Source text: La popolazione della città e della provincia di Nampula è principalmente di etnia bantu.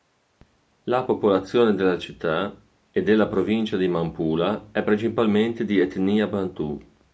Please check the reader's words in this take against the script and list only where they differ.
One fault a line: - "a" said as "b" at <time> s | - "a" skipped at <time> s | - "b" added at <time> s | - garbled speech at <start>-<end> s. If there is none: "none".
none